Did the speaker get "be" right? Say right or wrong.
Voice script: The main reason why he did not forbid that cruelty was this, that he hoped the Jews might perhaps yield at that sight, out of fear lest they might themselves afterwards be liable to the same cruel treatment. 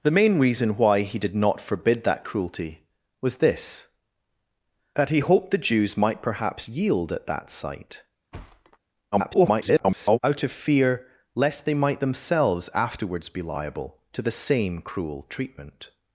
right